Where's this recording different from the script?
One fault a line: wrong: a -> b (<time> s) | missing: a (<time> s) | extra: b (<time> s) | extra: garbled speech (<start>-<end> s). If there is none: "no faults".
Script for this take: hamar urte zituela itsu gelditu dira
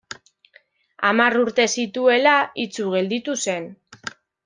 wrong: dira -> zen (3.5 s)